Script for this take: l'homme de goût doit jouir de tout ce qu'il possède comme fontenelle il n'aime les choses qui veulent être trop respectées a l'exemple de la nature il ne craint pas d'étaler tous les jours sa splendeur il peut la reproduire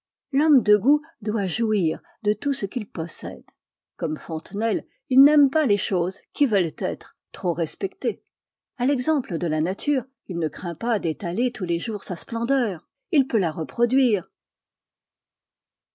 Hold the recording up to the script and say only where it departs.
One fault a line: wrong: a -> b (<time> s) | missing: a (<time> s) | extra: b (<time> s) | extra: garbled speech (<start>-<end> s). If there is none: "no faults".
extra: pas (5.5 s)